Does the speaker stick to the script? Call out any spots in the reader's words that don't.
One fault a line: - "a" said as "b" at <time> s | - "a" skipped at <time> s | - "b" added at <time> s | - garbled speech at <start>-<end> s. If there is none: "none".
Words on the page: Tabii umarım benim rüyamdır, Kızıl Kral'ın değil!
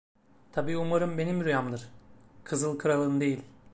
none